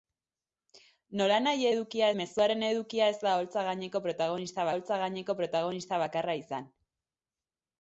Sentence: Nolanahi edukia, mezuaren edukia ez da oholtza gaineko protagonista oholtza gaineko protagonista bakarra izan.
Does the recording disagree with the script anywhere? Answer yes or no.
no